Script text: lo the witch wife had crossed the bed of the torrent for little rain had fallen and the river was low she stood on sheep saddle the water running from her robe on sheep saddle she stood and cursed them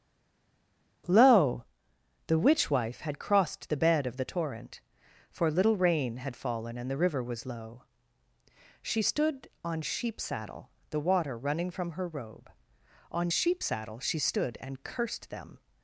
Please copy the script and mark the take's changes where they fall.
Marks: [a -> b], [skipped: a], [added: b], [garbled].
lo the witch wife had crossed the bed of the torrent for little rain had fallen and the river was low she stood on sheep saddle the water running from her robe on sheep saddle she stood and cursed them